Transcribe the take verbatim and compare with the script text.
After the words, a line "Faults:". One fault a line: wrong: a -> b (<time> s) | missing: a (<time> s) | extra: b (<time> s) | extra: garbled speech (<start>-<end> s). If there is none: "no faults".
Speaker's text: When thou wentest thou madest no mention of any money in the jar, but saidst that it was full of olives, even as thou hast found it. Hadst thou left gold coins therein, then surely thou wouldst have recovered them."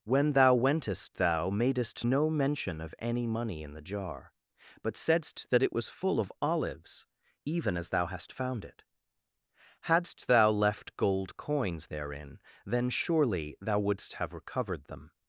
When thou wentest thou madest no mention of any money in the jar, but saidst that it was full of olives, even as thou hast found it. Hadst thou left gold coins therein, then surely thou wouldst have recovered them."
Faults:
no faults